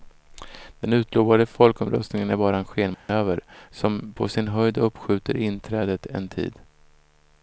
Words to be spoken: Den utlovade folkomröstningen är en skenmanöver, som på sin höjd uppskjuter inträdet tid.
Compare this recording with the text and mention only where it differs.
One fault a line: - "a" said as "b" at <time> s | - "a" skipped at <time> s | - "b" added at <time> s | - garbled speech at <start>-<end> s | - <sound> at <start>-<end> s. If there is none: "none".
- "bara" added at 2.4 s
- dropout at 2.9-3.1 s
- "en" added at 6.1 s